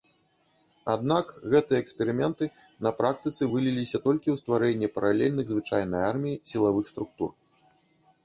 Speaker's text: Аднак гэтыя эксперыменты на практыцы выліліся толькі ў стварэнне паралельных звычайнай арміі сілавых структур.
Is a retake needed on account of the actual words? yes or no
no